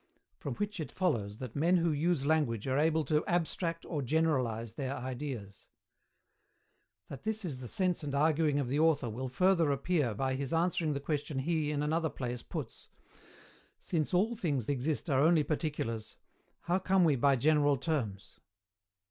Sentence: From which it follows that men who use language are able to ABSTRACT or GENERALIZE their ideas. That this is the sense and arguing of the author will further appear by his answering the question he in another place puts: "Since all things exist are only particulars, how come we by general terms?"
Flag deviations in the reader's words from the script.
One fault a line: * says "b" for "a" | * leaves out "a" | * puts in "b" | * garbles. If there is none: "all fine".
all fine